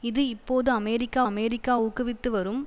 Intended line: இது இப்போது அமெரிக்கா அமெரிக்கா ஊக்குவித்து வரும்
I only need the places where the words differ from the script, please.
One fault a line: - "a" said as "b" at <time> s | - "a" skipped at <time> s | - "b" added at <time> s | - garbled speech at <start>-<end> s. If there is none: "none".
none